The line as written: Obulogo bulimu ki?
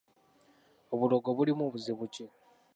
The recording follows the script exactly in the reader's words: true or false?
false